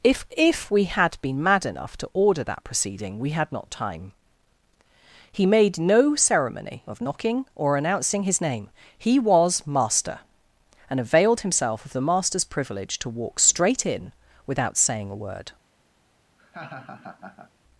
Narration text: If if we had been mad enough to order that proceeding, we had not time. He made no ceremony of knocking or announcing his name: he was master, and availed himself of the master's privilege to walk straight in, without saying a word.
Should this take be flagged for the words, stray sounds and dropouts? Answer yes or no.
yes